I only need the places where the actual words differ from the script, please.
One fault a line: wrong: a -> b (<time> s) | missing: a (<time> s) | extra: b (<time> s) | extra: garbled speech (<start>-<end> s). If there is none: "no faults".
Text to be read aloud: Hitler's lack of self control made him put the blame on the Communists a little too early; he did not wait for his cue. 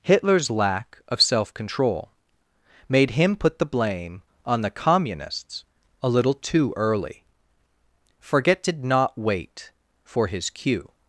wrong: he -> forget (8.2 s)